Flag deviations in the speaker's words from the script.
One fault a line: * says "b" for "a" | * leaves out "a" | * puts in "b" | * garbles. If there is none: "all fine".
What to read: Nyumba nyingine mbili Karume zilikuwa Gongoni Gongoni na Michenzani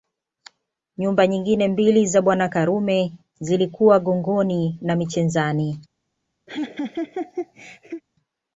* puts in "za Bwana"
* leaves out "Gongoni"